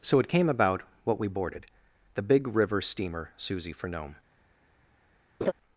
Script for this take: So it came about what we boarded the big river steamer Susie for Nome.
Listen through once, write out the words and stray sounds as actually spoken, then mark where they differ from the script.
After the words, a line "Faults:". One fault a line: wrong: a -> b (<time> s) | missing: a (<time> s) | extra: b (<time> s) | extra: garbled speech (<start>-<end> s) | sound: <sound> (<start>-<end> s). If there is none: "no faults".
So it came about what we boarded the big river steamer Susie for Nome.
Faults:
sound: laugh (5.4-5.5 s)